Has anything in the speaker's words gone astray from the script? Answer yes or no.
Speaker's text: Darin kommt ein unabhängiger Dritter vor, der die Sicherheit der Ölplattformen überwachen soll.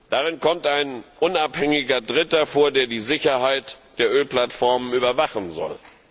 no